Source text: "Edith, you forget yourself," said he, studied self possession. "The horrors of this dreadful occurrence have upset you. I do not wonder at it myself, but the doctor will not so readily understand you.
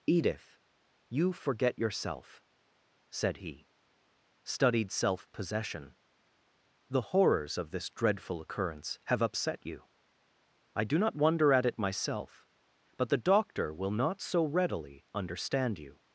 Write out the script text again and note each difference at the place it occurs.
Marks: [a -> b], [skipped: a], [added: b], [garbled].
"Edith, you forget yourself," said he, studied self possession. "The horrors of this dreadful occurrence have upset you. I do not wonder at it myself, but the doctor will not so readily understand you.